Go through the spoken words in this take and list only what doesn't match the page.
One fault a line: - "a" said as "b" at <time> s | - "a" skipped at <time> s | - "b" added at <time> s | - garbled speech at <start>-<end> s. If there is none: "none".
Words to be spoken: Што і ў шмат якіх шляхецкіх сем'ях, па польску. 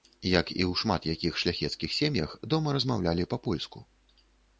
- "Што" said as "Як" at 0.3 s
- "дома размаўлялі" added at 2.5 s